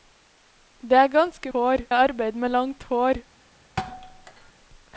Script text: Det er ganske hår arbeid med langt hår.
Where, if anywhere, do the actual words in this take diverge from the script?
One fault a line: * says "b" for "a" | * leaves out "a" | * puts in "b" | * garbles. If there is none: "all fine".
all fine